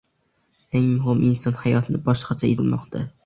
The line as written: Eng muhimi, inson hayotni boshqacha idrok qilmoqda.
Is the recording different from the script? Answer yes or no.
yes